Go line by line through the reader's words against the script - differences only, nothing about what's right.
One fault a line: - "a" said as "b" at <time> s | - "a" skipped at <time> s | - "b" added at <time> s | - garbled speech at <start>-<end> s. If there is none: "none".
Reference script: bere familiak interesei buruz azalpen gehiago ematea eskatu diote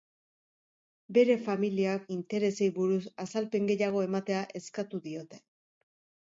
none